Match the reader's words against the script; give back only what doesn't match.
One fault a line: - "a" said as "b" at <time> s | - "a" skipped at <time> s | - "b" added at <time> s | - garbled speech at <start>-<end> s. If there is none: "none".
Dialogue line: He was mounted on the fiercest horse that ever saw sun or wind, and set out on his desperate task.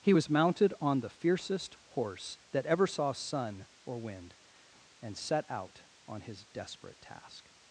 none